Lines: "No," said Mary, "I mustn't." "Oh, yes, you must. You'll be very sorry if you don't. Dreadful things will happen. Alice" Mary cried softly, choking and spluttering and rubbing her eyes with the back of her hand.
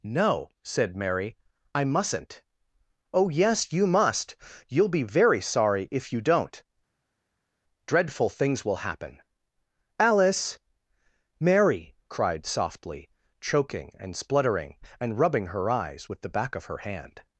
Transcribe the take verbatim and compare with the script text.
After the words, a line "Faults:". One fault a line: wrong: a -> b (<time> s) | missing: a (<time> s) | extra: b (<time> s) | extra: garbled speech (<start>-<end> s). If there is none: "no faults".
"No," said Mary, "I mustn't." "Oh, yes, you must. You'll be very sorry if you don't. Dreadful things will happen. Alice" Mary cried softly, choking and spluttering and rubbing her eyes with the back of her hand.
Faults:
no faults